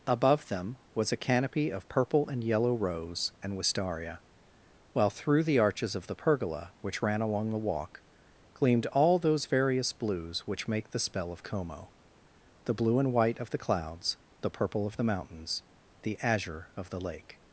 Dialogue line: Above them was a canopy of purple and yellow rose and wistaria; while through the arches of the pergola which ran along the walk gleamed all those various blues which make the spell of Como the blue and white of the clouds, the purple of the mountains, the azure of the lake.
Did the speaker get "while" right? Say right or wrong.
right